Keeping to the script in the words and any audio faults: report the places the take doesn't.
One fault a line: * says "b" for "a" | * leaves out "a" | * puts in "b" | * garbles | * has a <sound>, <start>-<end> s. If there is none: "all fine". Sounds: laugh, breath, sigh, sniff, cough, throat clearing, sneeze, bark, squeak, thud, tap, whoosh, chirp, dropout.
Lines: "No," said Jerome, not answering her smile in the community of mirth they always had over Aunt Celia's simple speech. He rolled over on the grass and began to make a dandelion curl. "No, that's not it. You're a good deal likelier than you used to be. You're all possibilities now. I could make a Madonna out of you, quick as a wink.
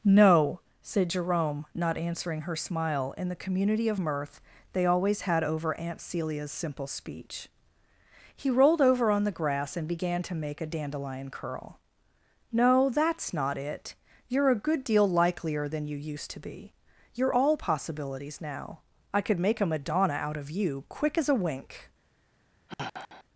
* has a sigh, 22.7-23.2 s